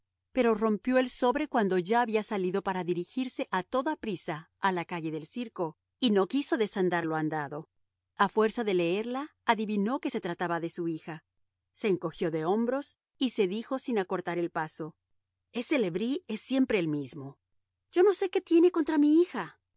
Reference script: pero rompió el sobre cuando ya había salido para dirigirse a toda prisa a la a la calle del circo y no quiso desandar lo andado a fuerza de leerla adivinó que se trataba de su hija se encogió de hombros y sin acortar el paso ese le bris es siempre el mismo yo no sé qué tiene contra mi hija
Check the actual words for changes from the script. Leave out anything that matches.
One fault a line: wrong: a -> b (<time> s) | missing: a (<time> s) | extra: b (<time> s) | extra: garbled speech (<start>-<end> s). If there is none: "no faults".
missing: a la (4.8 s)
extra: se dijo (13.3 s)